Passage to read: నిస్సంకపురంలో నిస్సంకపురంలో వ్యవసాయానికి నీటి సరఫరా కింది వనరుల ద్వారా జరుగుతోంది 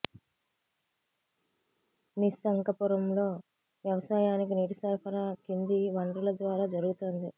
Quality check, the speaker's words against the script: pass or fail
fail